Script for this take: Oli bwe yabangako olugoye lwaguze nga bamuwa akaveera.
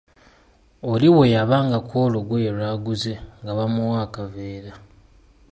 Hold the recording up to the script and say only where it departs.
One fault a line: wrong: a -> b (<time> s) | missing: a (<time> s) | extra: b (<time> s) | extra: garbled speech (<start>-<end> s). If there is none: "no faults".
no faults